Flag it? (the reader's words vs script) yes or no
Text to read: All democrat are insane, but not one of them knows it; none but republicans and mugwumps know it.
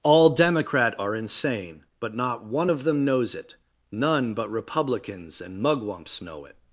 no